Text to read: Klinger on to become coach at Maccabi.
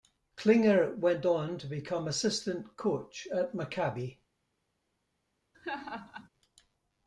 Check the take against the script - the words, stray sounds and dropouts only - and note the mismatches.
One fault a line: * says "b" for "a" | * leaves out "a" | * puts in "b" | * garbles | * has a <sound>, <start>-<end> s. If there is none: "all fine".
* puts in "went"
* puts in "assistant"
* has a laugh, 5.5-6.3 s